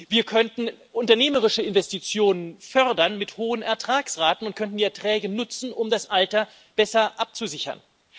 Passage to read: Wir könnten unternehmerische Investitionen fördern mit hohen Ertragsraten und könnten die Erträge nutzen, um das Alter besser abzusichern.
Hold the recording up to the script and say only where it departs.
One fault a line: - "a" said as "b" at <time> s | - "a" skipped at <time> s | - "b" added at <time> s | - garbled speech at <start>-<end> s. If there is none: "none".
none